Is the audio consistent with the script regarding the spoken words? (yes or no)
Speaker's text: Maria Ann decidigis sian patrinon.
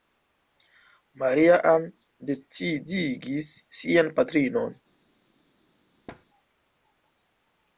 yes